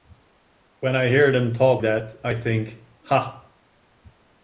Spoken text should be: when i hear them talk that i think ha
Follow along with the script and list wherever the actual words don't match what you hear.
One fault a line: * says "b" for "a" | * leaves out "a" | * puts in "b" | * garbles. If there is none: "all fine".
all fine